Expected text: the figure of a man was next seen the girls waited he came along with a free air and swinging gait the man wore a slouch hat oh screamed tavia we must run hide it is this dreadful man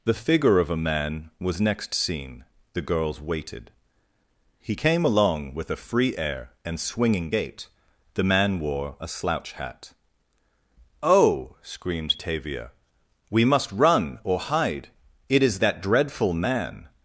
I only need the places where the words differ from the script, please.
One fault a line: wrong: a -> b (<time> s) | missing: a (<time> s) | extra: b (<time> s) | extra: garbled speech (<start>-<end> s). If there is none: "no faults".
extra: or (14.2 s)
wrong: this -> that (15.6 s)